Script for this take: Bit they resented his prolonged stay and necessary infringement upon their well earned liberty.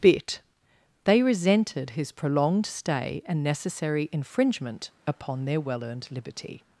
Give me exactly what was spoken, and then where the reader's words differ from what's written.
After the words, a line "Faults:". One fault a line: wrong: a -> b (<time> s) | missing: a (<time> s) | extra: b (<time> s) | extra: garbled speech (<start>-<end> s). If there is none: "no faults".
Bit they resented his prolonged stay and necessary infringement upon their well earned liberty.
Faults:
no faults